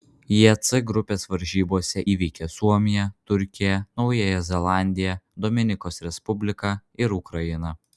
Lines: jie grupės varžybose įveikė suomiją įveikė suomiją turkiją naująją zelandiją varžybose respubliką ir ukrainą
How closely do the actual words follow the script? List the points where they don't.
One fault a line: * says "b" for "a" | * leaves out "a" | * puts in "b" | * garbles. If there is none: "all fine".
* puts in "c"
* leaves out "įveikė suomiją"
* says "dominikos" for "varžybose"